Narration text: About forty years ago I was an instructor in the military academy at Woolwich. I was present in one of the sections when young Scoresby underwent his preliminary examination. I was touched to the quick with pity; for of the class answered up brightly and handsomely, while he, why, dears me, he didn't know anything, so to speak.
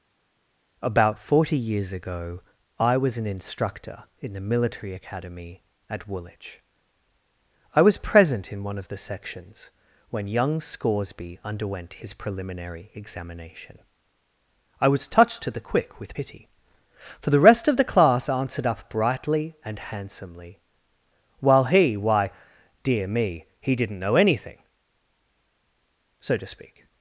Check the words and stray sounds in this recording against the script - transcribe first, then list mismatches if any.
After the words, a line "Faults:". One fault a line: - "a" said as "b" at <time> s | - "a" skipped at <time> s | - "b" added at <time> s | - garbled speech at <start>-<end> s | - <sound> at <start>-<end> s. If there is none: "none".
About forty years ago I was an instructor in the military academy at Woolwich. I was present in one of the sections when young Scoresby underwent his preliminary examination. I was touched to the quick with pity; for the rest of the class answered up brightly and handsomely, while he, why, dear me, he didn't know anything, so to speak.
Faults:
- "the rest" added at 17.3 s
- "dears" said as "dear" at 22.8 s